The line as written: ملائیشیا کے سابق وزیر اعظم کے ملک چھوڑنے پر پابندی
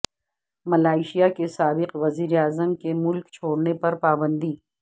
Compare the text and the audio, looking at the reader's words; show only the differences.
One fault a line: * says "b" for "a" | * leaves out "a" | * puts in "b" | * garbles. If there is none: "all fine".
all fine